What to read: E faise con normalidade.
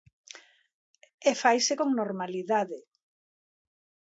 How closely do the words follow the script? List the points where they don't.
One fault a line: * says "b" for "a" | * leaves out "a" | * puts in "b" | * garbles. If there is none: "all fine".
all fine